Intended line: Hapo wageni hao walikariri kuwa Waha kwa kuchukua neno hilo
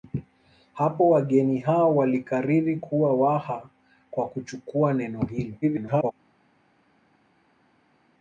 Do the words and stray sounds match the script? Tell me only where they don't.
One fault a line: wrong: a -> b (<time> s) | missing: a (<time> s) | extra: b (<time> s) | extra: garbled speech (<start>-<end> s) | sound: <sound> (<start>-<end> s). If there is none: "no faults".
extra: garbled speech (5.6-6.1 s)